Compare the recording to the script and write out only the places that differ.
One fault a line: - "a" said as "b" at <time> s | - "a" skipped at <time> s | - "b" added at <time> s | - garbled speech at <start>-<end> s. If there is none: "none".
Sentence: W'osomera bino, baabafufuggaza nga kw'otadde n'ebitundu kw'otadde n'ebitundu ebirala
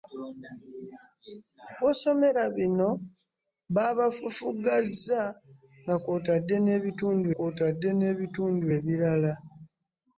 none